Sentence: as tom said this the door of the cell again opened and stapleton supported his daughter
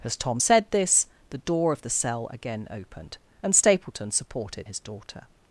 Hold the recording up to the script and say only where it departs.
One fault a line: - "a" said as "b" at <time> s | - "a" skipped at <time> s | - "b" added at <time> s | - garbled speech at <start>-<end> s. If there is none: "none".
none